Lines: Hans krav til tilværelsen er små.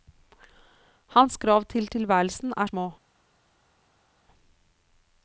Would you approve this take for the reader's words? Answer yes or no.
yes